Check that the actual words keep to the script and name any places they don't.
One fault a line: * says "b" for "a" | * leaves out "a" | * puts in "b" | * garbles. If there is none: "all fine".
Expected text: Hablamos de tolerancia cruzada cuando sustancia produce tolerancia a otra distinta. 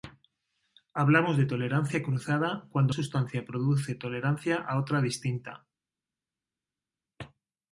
all fine